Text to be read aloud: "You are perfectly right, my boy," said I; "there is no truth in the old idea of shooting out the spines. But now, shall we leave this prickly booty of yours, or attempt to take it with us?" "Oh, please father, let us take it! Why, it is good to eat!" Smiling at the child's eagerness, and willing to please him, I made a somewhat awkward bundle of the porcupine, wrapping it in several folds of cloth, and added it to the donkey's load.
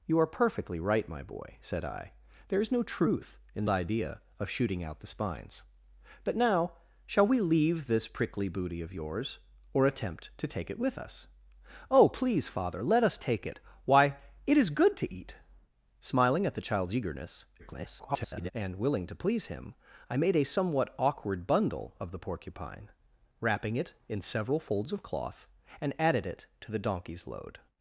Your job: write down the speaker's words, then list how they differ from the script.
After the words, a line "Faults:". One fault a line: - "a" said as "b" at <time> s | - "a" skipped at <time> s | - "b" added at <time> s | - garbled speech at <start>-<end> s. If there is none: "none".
"You are perfectly right, my boy," said I; "there is no truth in idea of shooting out the spines. But now, shall we leave this prickly booty of yours, or attempt to take it with us?" "Oh, please father, let us take it! Why, it is good to eat!" Smiling at the child's eagerness, [garbled] and willing to please him, I made a somewhat awkward bundle of the porcupine, wrapping it in several folds of cloth, and added it to the donkey's load.
Faults:
- "the old" skipped at 3.6 s
- garbled speech at 17.6-18.5 s